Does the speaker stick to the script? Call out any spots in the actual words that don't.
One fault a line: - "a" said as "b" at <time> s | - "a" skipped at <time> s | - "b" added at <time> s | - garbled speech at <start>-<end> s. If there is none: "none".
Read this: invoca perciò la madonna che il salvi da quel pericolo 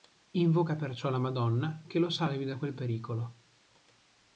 - "il" said as "lo" at 2.0 s